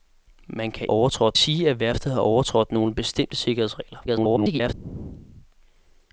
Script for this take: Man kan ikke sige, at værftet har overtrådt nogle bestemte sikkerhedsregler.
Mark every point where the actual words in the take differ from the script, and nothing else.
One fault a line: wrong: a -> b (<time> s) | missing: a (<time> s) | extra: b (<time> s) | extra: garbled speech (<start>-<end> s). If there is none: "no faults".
wrong: ikke -> overtrådt (0.9 s)
extra: garbled speech (4.1-4.7 s)